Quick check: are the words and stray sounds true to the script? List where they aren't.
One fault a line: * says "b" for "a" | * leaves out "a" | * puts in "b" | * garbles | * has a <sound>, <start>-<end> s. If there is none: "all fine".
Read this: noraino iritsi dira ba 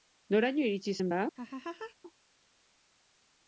* says "zen" for "dira"
* has a laugh, 1.4-2.0 s